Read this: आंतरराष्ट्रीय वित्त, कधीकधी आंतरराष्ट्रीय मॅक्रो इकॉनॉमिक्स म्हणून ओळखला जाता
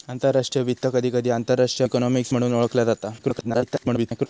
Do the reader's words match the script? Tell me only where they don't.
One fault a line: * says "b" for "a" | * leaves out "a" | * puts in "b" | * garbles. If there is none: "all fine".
* leaves out "मॅक्रो"
* garbles